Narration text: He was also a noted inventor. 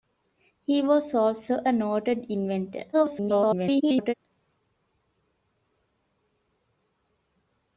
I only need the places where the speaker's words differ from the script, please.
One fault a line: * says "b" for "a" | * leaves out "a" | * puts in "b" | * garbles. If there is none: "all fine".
* garbles